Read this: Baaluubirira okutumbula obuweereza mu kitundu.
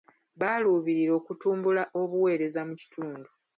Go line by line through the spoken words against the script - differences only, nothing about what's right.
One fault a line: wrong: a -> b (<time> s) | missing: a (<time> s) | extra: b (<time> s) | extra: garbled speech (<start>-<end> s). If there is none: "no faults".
no faults